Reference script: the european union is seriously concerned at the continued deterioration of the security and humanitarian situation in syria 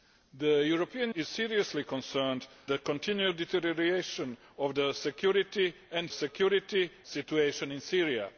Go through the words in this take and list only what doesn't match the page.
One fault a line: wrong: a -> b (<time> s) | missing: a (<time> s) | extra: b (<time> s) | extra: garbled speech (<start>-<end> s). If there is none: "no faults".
missing: union (1.1 s)
missing: at (2.5 s)
wrong: humanitarian -> security (6.1 s)